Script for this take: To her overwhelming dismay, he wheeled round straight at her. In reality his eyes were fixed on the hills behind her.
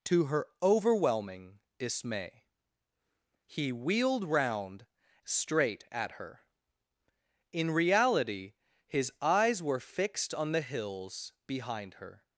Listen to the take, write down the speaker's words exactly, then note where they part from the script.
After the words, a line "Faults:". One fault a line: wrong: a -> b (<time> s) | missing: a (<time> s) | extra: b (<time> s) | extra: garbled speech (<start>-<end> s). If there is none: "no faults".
To her overwhelming dismay, he wheeled round straight at her. In reality his eyes were fixed on the hills behind her.
Faults:
no faults